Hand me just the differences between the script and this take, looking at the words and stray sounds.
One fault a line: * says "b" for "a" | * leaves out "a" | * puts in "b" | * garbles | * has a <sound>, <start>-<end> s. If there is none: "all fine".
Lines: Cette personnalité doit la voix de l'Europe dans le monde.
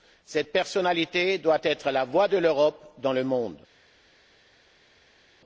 * puts in "être"